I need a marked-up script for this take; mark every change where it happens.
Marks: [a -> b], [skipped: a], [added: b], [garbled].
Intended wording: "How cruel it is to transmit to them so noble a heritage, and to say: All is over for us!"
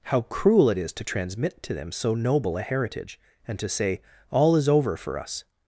"How cruel it is to transmit to them so noble a heritage, and to say: All is over for us!"